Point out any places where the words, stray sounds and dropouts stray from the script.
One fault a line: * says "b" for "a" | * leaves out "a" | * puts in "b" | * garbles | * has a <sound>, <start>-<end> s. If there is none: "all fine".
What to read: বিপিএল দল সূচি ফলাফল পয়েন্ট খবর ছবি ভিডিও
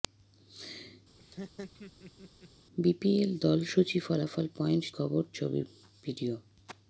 * has a laugh, 1.2-2.5 s